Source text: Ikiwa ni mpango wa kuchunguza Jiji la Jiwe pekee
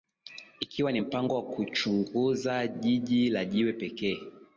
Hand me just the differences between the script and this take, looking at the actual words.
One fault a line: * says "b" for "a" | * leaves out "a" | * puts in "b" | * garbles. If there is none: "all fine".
all fine